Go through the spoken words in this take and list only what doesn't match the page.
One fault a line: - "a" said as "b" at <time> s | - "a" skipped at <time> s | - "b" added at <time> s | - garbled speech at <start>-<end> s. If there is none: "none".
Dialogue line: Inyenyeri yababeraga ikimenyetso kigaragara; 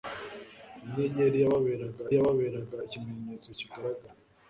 - "yababeraga" added at 2.2 s